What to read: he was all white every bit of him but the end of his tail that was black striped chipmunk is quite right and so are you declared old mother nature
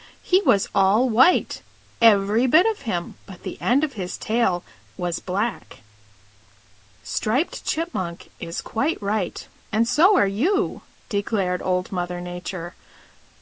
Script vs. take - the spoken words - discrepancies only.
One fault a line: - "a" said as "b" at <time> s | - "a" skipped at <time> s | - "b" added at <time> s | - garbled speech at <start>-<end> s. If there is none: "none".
- "that" skipped at 4.7 s